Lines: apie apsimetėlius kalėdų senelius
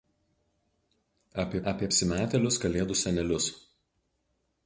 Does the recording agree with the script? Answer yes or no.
no